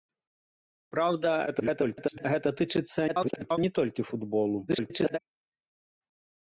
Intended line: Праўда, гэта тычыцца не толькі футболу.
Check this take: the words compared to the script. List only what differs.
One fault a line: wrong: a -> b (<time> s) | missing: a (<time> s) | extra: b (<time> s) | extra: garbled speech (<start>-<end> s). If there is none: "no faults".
extra: garbled speech (1.5-2.3 s)
extra: garbled speech (3.1-3.6 s)
extra: garbled speech (4.7-5.2 s)